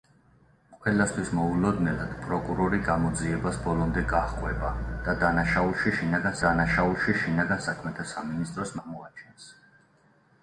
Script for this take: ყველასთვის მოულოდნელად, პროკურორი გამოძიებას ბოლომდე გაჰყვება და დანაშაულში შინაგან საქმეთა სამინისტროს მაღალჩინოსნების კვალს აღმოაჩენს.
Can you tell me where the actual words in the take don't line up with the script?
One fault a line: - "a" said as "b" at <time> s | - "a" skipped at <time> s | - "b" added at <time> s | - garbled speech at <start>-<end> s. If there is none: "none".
- "დანაშაულში შინაგან" added at 6.5 s
- "მაღალჩინოსნების კვალს" skipped at 8.7 s